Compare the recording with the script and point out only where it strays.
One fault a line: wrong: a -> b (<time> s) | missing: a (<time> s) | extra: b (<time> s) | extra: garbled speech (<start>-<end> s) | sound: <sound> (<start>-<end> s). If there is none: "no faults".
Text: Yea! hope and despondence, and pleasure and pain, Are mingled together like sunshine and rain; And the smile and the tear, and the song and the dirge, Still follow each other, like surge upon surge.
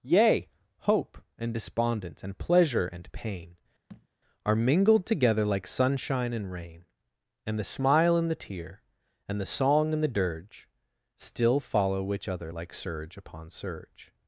sound: thud (3.9-4.1 s)
wrong: each -> which (12.0 s)